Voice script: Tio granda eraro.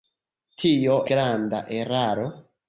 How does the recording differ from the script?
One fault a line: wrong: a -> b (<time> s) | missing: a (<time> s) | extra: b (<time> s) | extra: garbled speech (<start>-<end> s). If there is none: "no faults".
no faults